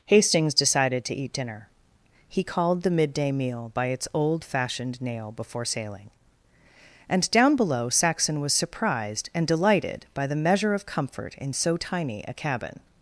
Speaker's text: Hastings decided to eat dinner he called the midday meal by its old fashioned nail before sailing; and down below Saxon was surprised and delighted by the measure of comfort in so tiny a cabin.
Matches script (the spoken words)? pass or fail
pass